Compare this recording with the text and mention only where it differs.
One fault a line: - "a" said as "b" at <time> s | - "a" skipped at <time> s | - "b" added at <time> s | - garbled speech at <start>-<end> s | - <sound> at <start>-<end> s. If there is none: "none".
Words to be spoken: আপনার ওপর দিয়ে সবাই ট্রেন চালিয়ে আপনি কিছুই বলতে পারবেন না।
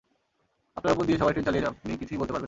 none